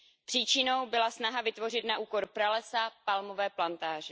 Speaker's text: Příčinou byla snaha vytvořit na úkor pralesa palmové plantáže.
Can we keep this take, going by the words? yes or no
yes